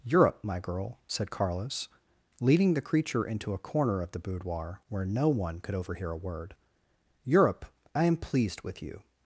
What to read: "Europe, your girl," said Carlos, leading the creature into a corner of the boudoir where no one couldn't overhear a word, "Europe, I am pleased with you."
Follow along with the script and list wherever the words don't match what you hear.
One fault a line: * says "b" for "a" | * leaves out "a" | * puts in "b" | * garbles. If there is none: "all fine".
* says "my" for "your"
* says "could" for "couldn't"